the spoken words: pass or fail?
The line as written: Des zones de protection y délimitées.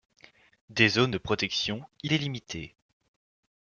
pass